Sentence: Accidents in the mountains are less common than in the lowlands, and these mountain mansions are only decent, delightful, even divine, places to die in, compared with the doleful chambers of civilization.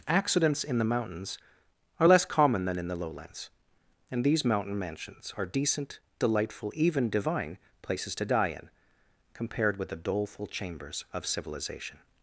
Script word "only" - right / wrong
wrong